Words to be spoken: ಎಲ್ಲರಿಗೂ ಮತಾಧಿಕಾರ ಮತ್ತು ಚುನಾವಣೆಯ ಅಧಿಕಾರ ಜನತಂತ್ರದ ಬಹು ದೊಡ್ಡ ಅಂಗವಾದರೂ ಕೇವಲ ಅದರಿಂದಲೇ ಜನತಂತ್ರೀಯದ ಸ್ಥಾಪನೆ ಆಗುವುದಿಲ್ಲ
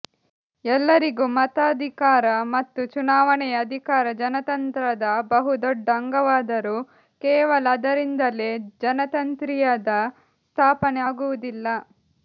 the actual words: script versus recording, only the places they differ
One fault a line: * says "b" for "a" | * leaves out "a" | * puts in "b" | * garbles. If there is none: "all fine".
all fine